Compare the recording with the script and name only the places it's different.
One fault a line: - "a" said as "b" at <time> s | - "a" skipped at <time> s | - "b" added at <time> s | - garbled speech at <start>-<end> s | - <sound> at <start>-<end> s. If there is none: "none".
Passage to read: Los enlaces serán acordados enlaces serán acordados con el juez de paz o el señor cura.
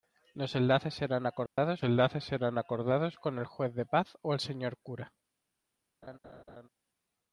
- dropout at 1.5-1.6 s
- laugh at 6.0-6.7 s